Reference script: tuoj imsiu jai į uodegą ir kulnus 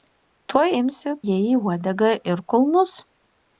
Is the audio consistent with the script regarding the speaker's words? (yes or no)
yes